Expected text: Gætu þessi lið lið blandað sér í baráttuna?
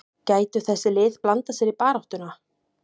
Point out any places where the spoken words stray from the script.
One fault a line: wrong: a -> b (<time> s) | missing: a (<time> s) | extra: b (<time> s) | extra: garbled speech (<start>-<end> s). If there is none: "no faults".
missing: lið (1.2 s)